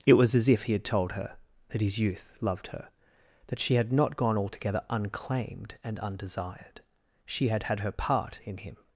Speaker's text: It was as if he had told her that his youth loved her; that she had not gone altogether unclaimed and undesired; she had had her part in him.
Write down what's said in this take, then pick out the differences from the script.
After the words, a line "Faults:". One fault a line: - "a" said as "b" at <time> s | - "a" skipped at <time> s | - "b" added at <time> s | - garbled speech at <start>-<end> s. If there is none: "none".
It was as if he had told her that his youth loved her; that she had not gone altogether unclaimed and undesired; she had had her part in him.
Faults:
none